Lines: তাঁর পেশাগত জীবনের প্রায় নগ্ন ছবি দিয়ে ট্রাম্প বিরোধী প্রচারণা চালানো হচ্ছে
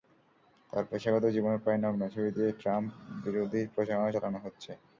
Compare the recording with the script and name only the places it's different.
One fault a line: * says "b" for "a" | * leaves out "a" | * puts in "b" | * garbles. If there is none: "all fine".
all fine